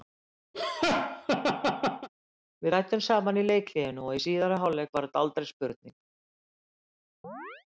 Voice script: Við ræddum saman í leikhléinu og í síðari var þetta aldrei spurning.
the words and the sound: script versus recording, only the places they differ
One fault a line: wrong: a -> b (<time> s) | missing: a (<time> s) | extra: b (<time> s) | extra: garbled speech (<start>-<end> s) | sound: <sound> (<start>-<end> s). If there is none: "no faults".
sound: laugh (0.5-2.1 s)
extra: hálfleik (4.6 s)
sound: chirp (7.2-7.7 s)